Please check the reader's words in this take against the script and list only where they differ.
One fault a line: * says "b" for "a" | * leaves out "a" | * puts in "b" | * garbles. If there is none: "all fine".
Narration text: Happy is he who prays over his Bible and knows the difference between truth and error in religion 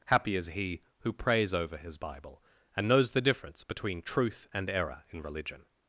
all fine